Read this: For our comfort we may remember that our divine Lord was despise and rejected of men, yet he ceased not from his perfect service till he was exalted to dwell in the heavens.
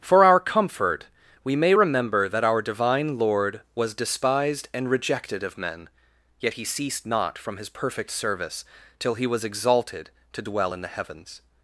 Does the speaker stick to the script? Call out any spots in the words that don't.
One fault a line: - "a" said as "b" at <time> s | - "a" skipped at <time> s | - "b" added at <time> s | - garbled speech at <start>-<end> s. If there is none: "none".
- "despise" said as "despised" at 3.9 s